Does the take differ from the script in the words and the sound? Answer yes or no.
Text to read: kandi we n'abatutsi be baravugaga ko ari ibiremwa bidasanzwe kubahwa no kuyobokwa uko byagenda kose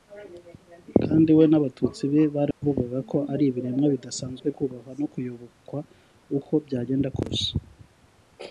yes